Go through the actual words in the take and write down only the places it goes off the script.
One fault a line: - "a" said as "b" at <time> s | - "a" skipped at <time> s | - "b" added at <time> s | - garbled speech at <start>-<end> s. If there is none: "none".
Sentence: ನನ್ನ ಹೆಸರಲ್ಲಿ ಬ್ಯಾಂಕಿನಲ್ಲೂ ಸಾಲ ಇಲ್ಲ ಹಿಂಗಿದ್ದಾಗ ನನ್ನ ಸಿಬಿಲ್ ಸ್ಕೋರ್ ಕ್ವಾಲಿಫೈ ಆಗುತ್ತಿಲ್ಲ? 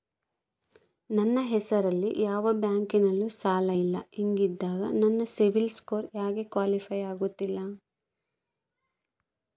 - "ಯಾವ" added at 2.2 s
- "ಯಾಕೆ" added at 6.1 s